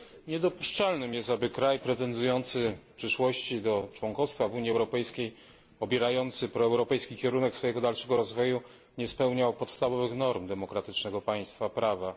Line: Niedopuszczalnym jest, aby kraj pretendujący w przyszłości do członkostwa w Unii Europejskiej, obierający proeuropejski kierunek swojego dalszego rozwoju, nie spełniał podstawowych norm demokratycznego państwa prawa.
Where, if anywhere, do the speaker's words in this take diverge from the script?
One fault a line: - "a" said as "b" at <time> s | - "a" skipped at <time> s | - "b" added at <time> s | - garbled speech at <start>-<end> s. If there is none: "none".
none